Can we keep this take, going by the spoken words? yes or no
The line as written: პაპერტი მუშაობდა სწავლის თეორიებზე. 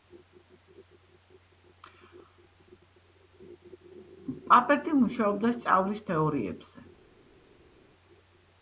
yes